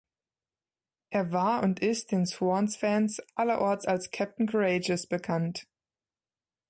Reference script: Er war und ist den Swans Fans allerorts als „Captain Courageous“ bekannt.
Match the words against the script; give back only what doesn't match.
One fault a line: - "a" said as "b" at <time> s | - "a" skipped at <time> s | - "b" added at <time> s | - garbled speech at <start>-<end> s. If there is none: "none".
none